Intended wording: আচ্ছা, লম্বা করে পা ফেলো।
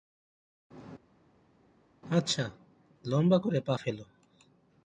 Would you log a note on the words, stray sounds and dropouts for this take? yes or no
no